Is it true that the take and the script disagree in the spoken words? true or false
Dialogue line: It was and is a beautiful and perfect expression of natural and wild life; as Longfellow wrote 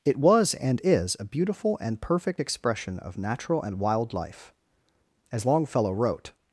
false